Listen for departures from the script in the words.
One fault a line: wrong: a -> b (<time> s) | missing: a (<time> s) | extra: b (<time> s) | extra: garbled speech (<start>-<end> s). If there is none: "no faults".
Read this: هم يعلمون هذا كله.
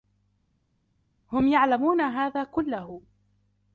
no faults